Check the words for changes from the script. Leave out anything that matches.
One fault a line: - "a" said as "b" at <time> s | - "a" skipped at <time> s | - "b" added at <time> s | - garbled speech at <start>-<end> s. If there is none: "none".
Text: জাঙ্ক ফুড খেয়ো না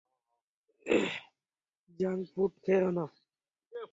none